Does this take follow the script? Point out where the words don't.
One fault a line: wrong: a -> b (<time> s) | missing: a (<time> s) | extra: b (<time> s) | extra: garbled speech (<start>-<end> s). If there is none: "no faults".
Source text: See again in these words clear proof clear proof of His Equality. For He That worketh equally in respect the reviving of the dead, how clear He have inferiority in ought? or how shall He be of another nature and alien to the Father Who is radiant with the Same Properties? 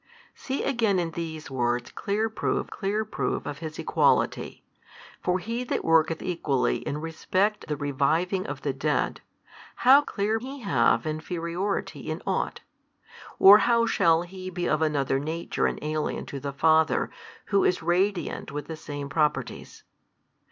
no faults